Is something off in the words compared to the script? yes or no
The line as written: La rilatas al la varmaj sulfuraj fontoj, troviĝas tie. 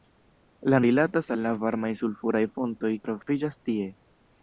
no